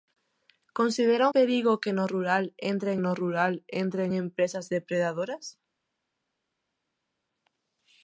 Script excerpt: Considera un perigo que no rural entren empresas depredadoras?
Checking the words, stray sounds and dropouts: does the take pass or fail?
fail